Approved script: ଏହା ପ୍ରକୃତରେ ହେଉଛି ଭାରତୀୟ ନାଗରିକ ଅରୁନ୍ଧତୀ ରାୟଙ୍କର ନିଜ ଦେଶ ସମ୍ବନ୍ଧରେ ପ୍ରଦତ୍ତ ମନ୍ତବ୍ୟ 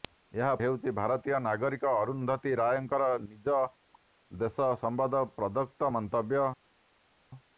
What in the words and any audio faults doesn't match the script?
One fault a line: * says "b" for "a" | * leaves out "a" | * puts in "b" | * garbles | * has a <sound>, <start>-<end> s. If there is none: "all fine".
* leaves out "ପ୍ରକୃତରେ"